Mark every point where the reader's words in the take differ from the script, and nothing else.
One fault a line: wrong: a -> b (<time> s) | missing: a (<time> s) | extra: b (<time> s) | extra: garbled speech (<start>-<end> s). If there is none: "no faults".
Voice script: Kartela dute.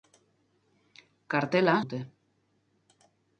no faults